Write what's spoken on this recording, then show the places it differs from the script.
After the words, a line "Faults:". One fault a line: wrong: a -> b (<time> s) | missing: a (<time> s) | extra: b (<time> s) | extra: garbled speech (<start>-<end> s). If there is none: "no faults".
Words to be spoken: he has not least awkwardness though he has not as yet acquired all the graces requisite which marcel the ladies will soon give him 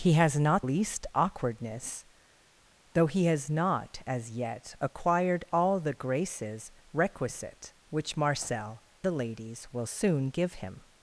he has not least awkwardness though he has not as yet acquired all the graces requisite which marcel the ladies will soon give him
Faults:
no faults